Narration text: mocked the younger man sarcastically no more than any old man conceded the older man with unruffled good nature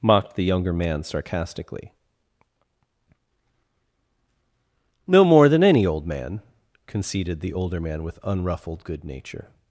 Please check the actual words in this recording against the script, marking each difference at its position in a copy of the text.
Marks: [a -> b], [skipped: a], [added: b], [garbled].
mocked the younger man sarcastically no more than any old man conceded the older man with unruffled good nature